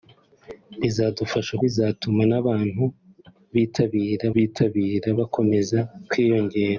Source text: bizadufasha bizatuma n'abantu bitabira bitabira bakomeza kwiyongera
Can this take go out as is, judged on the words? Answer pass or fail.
pass